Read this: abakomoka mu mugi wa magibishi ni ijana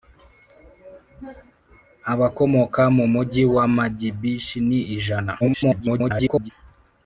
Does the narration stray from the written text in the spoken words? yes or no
yes